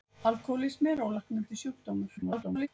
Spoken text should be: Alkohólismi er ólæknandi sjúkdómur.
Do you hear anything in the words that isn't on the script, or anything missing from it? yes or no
yes